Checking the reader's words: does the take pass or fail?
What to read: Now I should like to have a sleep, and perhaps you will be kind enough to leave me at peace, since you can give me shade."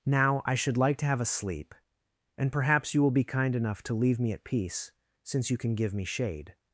pass